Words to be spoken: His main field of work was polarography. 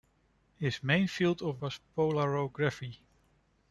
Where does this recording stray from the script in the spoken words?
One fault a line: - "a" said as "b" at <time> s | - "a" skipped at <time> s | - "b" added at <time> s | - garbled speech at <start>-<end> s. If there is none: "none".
- "work" skipped at 1.6 s